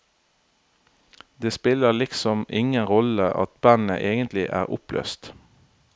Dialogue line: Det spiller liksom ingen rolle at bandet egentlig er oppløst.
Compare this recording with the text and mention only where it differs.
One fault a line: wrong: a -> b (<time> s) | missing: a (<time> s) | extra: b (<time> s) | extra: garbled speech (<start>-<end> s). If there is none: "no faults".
no faults